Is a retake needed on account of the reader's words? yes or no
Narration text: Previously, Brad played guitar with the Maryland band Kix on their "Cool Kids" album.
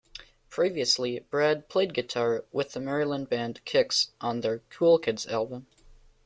no